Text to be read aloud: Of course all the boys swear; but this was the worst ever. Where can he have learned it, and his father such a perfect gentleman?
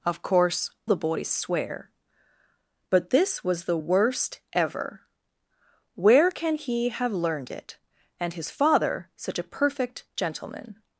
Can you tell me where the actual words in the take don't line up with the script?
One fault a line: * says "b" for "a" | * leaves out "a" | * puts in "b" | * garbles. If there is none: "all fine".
* leaves out "all"